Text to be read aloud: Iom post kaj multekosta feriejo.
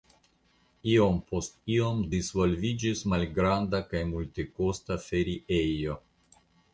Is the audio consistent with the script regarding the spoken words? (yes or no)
no